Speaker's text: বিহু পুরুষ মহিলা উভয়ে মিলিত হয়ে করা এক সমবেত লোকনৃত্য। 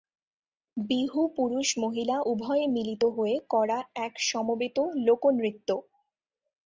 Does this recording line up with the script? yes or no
yes